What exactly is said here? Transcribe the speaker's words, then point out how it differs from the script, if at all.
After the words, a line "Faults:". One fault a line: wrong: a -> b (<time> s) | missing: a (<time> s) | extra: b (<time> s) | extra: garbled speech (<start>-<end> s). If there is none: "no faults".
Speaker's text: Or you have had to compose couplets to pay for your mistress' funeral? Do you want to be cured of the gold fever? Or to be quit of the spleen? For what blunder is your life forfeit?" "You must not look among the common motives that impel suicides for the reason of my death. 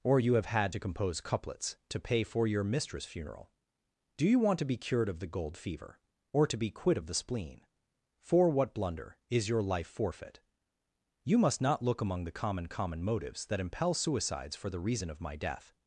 Or you have had to compose couplets to pay for your mistress' funeral? Do you want to be cured of the gold fever? Or to be quit of the spleen? For what blunder is your life forfeit?" "You must not look among the common common motives that impel suicides for the reason of my death.
Faults:
extra: common (12.7 s)